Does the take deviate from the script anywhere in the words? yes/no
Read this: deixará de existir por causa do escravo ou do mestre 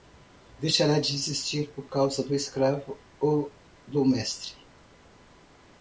no